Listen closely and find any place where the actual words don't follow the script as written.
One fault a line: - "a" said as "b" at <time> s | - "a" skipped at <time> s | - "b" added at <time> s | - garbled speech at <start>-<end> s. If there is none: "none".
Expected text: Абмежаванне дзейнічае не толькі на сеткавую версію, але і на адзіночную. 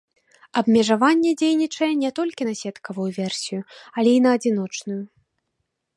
none